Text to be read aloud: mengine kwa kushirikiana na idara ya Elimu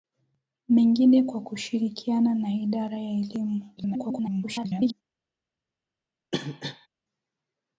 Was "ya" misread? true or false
false